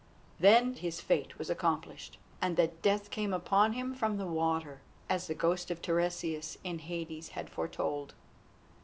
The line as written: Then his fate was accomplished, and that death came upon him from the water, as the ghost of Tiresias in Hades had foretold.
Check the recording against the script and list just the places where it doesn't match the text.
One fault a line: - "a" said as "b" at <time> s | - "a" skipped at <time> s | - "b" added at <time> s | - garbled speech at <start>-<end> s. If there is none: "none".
none